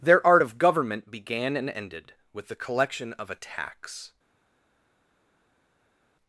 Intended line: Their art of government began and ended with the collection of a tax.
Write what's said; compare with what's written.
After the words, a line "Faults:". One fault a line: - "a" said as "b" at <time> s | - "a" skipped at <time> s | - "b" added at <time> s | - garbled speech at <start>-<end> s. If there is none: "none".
Their art of government began and ended with the collection of a tax.
Faults:
none